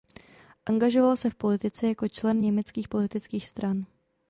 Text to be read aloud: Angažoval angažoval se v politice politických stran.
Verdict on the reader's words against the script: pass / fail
fail